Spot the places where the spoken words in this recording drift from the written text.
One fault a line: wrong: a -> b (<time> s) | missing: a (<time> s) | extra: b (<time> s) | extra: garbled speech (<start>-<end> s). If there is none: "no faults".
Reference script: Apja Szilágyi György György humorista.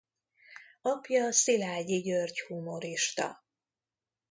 missing: György (2.4 s)